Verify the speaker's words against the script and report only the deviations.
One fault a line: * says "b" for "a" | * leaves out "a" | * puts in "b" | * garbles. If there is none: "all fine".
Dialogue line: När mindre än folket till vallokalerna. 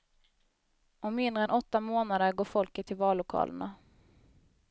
* says "Om" for "När"
* puts in "åtta månader går"